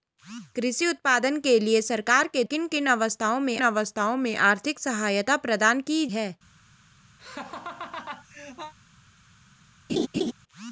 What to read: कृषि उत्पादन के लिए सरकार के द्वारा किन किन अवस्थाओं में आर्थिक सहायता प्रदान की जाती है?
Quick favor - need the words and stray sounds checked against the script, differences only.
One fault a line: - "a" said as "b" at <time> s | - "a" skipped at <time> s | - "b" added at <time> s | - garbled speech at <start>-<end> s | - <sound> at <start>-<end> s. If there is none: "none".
- "द्वारा" skipped at 2.4 s
- "अवस्थाओं में" added at 3.6 s
- "जाती" skipped at 6.0 s
- laugh at 7.2-8.7 s
- laugh at 9.9-10.3 s